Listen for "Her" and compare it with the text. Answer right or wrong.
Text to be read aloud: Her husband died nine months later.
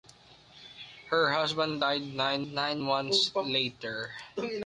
right